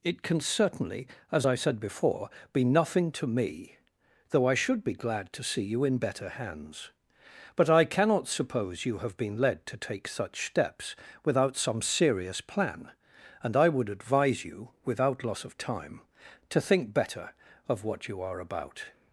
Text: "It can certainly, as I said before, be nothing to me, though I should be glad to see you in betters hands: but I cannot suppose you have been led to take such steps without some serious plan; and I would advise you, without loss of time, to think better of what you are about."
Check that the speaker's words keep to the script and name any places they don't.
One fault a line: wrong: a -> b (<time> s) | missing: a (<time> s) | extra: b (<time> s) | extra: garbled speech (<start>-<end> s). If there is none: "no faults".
wrong: betters -> better (6.0 s)